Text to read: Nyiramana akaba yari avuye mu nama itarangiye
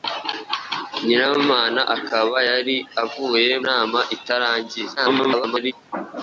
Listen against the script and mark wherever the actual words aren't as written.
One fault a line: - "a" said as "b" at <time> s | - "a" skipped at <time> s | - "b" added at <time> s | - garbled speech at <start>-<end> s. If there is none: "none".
- "mu" skipped at 3.5 s
- garbled speech at 5.0-5.7 s